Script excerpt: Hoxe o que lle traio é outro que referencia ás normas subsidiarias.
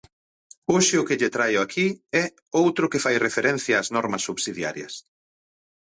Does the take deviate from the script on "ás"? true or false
false